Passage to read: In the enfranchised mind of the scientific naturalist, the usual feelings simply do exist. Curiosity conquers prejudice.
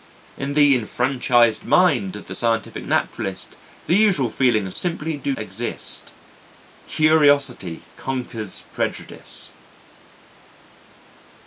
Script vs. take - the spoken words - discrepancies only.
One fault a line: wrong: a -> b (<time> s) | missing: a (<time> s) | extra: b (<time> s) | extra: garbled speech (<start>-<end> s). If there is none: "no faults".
no faults